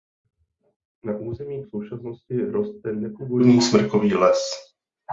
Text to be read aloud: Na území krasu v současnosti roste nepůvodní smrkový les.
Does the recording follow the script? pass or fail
fail